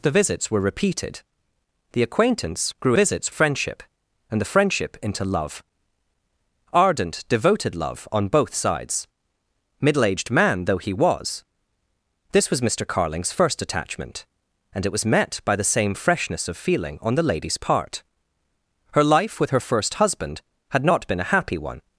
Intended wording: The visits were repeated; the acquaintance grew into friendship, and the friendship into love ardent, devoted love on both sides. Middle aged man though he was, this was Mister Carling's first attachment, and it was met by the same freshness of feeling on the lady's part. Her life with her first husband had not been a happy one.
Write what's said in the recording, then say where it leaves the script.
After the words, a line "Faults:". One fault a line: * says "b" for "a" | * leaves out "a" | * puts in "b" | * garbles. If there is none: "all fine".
The visits were repeated; the acquaintance grew visits friendship, and the friendship into love ardent, devoted love on both sides. Middle aged man though he was, this was Mister Carling's first attachment, and it was met by the same freshness of feeling on the lady's part. Her life with her first husband had not been a happy one.
Faults:
* says "visits" for "into"